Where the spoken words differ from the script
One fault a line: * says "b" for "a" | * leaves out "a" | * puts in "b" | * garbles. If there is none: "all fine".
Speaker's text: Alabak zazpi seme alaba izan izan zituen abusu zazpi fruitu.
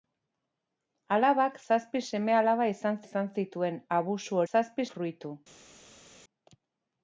all fine